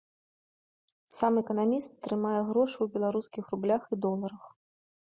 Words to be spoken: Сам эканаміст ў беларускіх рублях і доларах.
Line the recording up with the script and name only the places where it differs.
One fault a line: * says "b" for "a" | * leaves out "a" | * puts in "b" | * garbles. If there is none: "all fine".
* puts in "трымае грошы"